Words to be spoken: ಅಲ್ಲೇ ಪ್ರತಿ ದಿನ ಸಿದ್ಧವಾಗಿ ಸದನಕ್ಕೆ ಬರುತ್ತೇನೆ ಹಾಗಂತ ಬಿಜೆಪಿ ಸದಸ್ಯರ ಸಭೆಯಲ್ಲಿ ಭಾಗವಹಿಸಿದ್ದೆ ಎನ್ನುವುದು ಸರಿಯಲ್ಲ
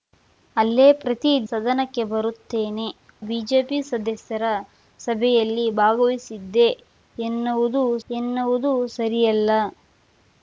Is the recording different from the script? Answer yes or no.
yes